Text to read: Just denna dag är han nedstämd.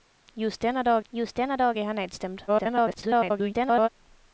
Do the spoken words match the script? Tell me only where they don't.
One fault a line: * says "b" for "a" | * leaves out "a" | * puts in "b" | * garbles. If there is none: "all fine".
* puts in "just denna dag"
* garbles